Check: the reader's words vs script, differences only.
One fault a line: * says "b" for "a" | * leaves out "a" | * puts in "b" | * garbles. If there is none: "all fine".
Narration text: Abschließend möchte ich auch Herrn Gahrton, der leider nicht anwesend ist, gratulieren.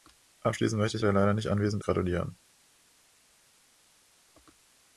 * leaves out "auch Herrn Gahrton"
* leaves out "ist"